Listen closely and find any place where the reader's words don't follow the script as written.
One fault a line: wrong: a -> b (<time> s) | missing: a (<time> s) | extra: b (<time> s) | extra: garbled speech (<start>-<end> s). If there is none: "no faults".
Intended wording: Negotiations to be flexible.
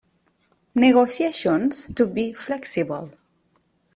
no faults